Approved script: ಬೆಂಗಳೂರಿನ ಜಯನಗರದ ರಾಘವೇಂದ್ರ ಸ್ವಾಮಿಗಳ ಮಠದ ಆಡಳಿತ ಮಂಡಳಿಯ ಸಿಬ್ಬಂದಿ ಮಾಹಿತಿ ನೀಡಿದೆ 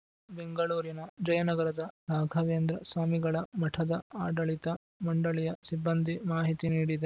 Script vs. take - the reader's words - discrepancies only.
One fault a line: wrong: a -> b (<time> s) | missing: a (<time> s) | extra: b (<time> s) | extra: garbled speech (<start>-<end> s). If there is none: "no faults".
no faults